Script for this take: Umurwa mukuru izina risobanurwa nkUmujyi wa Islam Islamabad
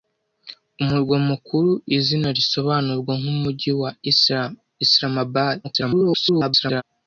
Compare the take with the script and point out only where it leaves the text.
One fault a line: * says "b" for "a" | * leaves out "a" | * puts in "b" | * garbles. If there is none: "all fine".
* garbles